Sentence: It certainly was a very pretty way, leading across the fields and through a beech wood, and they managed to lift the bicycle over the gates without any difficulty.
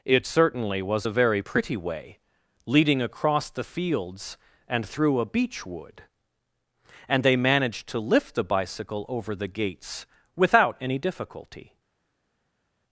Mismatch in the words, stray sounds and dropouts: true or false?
false